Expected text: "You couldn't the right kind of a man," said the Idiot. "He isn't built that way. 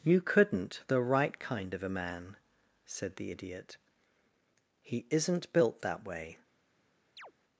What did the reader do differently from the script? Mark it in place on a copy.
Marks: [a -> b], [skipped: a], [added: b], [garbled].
"You couldn't the right kind of a man," said the Idiot. "He isn't built that way.